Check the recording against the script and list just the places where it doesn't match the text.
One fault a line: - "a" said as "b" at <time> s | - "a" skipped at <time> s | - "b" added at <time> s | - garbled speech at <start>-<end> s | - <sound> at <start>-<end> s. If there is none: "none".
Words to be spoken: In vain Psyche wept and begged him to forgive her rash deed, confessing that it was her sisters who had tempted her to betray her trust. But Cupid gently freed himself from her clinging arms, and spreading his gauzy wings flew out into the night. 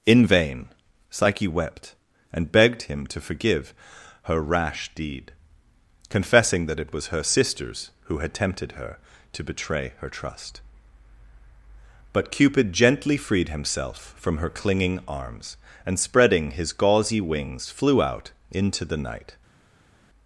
none